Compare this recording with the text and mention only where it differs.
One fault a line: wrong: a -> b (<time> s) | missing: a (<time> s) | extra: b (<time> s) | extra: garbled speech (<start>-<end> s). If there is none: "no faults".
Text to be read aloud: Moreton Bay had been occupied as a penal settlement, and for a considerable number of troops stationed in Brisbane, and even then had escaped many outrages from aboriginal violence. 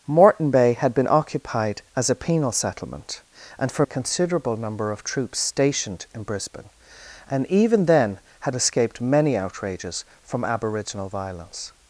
no faults